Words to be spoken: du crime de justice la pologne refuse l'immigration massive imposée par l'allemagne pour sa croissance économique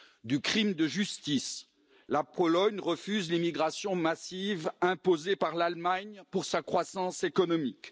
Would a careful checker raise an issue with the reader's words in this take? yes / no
no